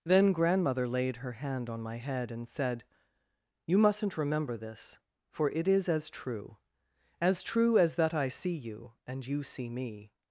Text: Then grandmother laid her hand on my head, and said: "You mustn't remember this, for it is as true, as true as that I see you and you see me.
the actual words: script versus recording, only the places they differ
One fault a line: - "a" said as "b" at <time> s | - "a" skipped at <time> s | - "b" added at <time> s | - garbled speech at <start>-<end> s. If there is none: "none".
none